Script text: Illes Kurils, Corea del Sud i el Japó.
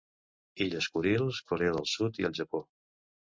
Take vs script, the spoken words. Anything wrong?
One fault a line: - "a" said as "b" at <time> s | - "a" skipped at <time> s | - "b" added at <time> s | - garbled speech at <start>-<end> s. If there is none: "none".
none